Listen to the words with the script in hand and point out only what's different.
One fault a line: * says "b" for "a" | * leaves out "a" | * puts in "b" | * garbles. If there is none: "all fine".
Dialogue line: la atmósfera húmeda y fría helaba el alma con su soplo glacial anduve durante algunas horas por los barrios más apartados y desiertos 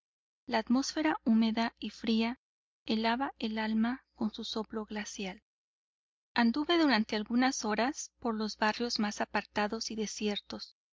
all fine